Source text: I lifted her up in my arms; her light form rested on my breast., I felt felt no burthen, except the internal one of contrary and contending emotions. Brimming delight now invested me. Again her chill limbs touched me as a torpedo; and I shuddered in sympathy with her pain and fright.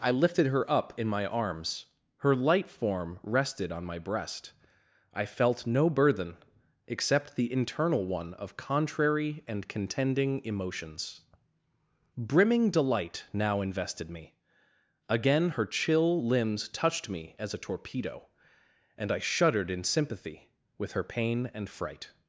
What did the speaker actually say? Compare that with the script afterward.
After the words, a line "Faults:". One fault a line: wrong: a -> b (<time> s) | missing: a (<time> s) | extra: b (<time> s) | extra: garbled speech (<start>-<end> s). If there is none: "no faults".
I lifted her up in my arms; her light form rested on my breast., I felt no burthen, except the internal one of contrary and contending emotions. Brimming delight now invested me. Again her chill limbs touched me as a torpedo; and I shuddered in sympathy with her pain and fright.
Faults:
missing: felt (5.7 s)